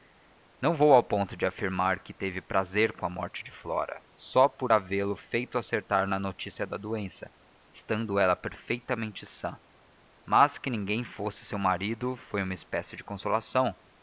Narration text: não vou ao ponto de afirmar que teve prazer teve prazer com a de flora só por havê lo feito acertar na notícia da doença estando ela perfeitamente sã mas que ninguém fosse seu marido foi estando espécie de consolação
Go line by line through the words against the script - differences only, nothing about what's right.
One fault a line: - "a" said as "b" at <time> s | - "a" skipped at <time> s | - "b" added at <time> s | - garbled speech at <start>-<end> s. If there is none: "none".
- "teve prazer" skipped at 2.9 s
- "morte" added at 3.1 s
- "estando" said as "uma" at 12.4 s